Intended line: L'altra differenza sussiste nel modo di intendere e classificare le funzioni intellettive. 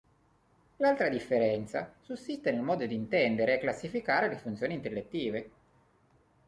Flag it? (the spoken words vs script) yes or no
no